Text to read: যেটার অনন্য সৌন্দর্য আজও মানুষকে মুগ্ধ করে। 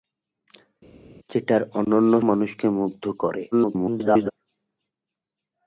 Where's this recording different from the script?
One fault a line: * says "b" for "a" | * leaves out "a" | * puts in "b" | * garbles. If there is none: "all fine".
* leaves out "সৌন্দর্য আজও"
* garbles